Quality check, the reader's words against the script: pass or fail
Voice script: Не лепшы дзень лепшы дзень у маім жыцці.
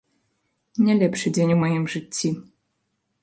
fail